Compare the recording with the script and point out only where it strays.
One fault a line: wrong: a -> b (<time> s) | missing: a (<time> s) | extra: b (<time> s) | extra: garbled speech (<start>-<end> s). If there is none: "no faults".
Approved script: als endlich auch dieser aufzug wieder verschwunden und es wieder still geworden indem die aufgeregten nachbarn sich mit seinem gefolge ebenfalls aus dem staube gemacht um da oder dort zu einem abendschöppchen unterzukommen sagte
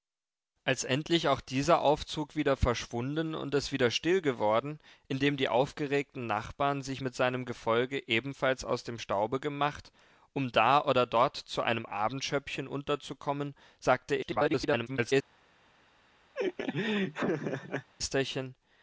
extra: garbled speech (14.2-15.1 s)